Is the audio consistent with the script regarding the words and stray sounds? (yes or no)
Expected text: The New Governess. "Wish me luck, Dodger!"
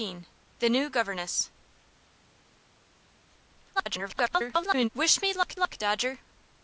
no